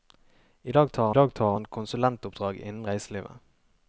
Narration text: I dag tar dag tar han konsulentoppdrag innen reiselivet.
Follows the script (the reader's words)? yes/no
yes